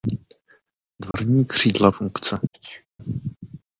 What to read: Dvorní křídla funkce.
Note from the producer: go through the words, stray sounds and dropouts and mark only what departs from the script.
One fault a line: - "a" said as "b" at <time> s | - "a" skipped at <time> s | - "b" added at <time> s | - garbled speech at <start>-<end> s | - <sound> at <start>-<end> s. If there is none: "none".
- dropout at 1.1-1.1 s
- sneeze at 2.5-2.9 s